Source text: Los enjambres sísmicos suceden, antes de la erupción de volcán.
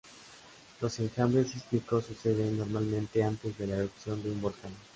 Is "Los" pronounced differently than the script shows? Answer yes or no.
no